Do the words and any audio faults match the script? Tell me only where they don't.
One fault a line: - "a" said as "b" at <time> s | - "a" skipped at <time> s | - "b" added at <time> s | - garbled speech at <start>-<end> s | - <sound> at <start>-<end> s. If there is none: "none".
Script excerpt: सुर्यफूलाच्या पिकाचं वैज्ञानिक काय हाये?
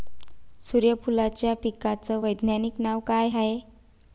- "नाव" added at 2.8 s